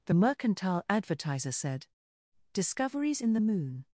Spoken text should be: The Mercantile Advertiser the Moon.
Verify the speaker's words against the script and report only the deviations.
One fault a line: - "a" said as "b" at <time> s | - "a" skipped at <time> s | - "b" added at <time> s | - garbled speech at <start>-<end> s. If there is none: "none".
- "said Discoveries in" added at 1.5 s